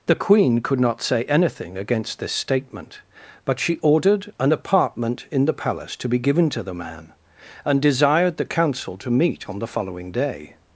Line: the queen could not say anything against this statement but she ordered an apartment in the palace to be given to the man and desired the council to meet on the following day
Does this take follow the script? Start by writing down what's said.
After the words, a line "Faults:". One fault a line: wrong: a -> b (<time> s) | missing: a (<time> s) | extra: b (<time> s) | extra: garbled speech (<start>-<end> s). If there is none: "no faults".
the queen could not say anything against this statement but she ordered an apartment in the palace to be given to the man and desired the council to meet on the following day
Faults:
no faults